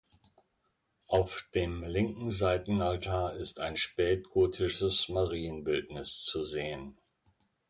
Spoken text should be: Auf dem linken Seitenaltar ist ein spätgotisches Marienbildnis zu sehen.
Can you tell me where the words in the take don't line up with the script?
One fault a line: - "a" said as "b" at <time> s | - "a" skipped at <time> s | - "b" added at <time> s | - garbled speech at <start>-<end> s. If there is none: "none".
none